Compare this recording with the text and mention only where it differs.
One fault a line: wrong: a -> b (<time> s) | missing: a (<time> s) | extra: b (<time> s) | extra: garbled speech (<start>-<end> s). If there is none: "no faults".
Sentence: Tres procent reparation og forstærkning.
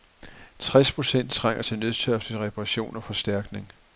extra: trænger til nødtørftig (1.3 s)